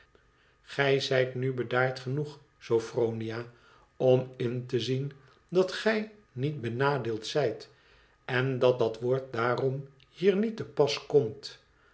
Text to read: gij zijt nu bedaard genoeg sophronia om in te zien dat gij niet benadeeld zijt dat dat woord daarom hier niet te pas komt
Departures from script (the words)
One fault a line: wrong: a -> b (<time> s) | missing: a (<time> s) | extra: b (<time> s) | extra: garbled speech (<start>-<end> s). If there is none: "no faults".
extra: en (8.2 s)